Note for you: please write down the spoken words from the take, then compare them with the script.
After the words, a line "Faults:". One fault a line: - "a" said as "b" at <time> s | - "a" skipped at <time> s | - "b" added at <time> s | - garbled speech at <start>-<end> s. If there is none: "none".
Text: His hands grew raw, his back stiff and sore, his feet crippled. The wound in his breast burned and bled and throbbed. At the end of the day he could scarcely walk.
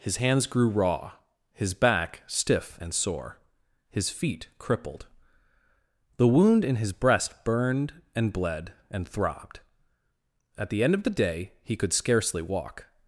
His hands grew raw, his back stiff and sore, his feet crippled. The wound in his breast burned and bled and throbbed. At the end of the day he could scarcely walk.
Faults:
none